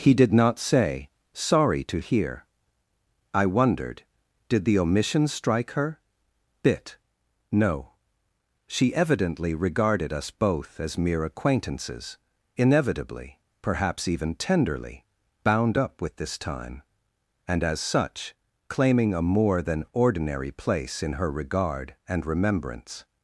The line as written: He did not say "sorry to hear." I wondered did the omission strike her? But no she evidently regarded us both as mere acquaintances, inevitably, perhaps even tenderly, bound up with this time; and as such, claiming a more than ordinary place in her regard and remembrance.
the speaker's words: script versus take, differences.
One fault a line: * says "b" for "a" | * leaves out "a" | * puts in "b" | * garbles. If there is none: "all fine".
* says "Bit" for "But"